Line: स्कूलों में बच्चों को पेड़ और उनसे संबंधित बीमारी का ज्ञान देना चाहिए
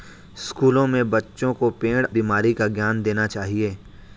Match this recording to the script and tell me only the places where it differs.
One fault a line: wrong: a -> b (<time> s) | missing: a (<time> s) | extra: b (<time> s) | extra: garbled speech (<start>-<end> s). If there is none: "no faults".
missing: और उनसे संबंधित (2.0 s)